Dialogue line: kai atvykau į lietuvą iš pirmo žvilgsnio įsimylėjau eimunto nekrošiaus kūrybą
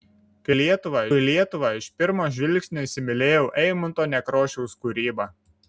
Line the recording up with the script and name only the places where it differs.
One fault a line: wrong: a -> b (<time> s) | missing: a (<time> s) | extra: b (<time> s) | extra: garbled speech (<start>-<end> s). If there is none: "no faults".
wrong: atvykau -> lietuvą (0.6 s)